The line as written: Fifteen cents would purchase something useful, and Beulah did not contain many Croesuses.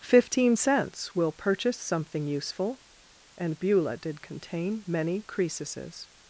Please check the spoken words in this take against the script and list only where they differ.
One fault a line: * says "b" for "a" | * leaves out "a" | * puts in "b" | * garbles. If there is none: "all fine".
* says "will" for "would"
* leaves out "not"